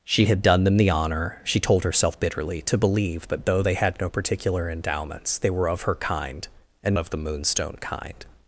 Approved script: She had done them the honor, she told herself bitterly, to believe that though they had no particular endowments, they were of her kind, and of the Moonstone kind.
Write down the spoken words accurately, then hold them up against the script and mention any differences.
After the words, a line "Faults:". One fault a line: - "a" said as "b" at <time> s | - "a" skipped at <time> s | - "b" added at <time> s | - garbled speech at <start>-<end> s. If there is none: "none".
She had done them the honor, she told herself bitterly, to believe that though they had no particular endowments, they were of her kind, and of the Moonstone kind.
Faults:
none